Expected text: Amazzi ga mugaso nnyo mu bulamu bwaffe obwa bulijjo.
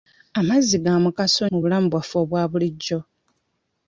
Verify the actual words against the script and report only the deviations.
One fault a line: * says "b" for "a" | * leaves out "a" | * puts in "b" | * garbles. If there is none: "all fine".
* leaves out "nnyo"